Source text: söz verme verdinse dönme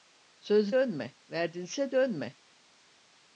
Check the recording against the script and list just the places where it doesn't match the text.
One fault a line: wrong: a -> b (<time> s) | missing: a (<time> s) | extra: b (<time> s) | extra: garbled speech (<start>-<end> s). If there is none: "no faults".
wrong: verme -> dönme (0.7 s)